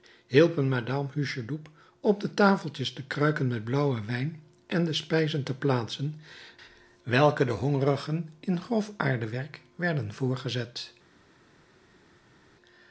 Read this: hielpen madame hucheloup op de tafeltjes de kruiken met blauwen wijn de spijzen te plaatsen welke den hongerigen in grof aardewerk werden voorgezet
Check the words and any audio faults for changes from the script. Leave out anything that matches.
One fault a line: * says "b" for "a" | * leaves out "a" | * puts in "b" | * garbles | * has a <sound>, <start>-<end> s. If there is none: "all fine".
* puts in "en"